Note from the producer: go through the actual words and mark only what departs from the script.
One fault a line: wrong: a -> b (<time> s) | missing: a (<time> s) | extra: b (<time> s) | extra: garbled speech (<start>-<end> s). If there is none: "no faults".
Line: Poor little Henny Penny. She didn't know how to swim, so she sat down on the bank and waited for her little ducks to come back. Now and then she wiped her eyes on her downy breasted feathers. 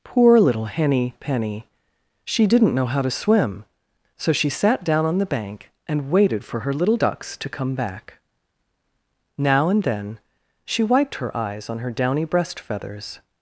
wrong: breasted -> breast (12.2 s)